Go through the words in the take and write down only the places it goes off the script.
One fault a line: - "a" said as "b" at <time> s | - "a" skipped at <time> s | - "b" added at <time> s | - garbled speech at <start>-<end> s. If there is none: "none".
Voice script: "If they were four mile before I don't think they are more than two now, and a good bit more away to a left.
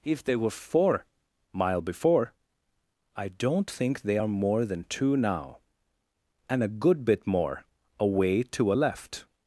none